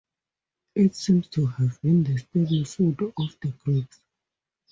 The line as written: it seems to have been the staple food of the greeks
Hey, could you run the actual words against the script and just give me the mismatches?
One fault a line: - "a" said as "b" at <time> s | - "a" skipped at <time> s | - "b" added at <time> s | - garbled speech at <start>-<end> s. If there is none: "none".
none